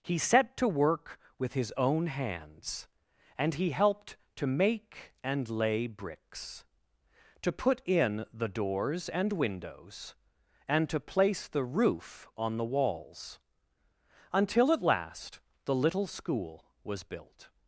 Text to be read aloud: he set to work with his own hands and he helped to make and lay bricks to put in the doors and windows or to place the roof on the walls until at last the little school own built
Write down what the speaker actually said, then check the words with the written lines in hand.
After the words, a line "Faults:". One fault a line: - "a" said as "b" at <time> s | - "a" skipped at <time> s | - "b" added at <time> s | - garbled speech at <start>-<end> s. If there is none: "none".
he set to work with his own hands and he helped to make and lay bricks to put in the doors and windows and to place the roof on the walls until at last the little school was built
Faults:
- "or" said as "and" at 10.7 s
- "own" said as "was" at 16.8 s